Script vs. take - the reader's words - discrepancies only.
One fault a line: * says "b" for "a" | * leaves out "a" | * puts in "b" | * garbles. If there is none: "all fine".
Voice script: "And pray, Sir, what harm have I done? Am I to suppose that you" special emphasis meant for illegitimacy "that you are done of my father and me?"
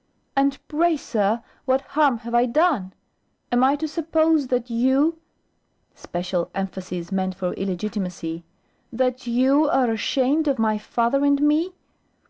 * says "ashamed" for "done"